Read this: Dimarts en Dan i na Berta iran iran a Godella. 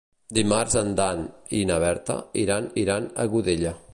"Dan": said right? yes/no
yes